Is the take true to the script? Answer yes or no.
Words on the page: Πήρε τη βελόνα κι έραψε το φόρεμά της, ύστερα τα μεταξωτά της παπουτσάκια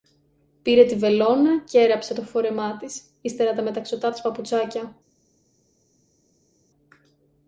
yes